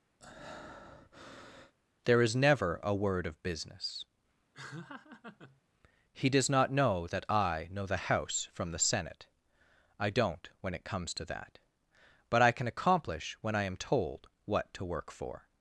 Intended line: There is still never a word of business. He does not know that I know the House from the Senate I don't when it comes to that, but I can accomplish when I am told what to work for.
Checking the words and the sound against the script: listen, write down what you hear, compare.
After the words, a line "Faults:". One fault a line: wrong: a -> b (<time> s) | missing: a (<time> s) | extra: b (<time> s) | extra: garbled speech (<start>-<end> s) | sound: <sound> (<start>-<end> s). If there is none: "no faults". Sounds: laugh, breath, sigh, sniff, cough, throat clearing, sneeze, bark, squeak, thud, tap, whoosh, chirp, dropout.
There is never a word of business. He does not know that I know the House from the Senate I don't when it comes to that, but I can accomplish when I am told what to work for.
Faults:
sound: breath (0.2-1.7 s)
missing: still (2.3 s)
sound: laugh (4.5-5.6 s)